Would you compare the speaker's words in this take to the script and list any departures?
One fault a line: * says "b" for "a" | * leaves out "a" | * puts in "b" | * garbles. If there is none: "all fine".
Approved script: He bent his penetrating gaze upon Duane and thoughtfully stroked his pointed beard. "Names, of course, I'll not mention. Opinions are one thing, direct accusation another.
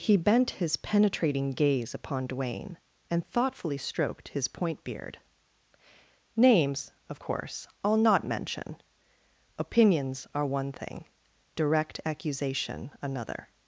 * says "point" for "pointed"